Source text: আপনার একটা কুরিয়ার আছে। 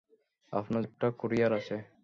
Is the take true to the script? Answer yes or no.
yes